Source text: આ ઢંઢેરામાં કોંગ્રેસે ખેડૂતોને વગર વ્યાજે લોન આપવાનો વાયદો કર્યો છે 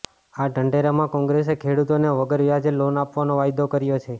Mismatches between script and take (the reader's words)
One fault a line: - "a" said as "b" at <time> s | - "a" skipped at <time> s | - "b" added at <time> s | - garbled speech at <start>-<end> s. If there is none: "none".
none